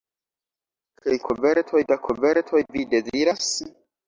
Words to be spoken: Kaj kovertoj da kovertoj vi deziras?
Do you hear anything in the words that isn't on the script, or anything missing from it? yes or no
no